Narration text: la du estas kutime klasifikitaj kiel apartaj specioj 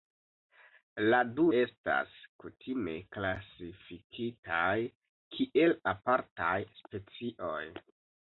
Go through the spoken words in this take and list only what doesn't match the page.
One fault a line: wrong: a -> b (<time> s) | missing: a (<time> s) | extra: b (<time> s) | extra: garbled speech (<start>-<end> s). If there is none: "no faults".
no faults